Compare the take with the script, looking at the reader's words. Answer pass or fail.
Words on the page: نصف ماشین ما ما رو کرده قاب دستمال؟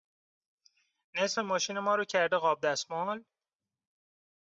fail